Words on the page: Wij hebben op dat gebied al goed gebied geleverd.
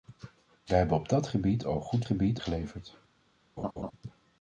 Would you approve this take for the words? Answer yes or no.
yes